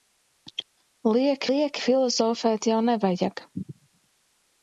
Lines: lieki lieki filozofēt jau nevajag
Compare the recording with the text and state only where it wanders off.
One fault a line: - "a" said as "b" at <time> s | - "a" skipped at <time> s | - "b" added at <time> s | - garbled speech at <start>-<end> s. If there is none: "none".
none